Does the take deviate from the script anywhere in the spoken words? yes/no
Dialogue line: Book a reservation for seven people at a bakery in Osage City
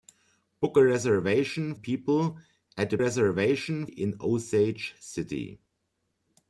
yes